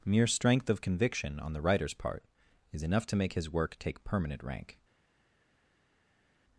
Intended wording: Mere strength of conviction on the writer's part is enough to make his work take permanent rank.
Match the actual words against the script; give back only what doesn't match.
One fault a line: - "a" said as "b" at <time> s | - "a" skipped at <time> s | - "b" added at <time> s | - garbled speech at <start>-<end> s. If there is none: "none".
none